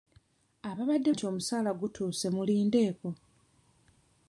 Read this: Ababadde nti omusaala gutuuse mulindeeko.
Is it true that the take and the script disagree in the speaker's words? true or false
false